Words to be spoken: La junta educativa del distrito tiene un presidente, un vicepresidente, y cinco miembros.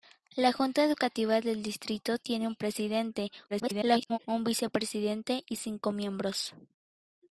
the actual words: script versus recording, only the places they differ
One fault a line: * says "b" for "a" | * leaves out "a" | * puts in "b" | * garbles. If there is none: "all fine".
* garbles